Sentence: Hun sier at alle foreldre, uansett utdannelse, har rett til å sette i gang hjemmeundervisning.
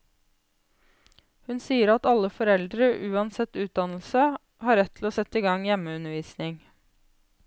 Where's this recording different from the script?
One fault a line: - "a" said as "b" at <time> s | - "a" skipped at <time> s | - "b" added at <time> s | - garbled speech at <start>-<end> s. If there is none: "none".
none